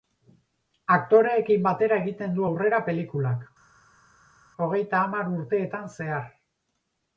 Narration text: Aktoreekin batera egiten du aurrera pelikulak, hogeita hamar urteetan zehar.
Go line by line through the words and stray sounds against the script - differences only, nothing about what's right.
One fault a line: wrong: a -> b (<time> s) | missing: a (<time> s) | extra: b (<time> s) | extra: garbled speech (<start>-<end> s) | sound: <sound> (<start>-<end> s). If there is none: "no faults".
no faults